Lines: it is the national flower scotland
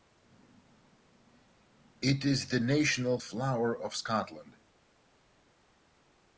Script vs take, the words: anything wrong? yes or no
yes